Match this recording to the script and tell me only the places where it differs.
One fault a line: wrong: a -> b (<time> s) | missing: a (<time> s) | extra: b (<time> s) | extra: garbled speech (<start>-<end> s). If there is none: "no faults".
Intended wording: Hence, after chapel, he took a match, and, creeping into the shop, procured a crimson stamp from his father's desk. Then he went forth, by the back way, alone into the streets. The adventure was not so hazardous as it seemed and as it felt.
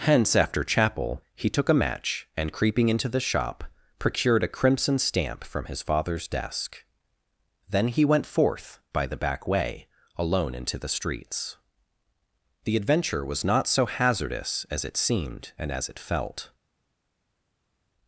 no faults